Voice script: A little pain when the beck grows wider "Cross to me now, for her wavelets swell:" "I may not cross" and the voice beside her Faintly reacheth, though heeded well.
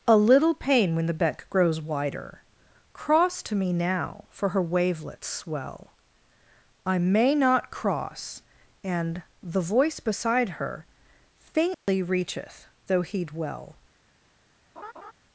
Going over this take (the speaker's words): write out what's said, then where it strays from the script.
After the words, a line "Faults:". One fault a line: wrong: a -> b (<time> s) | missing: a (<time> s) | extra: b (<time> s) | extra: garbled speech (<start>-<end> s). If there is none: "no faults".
A little pain when the beck grows wider "Cross to me now, for her wavelets swell:" "I may not cross" and the voice beside her Faintly reacheth, though heed well.
Faults:
wrong: heeded -> heed (13.0 s)